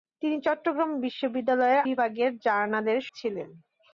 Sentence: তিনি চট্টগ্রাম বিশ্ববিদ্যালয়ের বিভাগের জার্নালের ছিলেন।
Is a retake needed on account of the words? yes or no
no